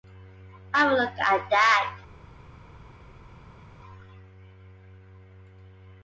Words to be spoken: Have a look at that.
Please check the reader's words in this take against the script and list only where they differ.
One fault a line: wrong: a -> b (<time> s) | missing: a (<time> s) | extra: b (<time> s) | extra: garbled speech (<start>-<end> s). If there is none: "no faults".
no faults